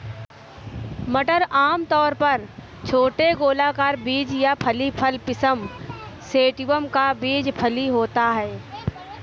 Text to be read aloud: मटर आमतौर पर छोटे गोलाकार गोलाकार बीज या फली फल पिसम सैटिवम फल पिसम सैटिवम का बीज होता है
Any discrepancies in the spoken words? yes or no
yes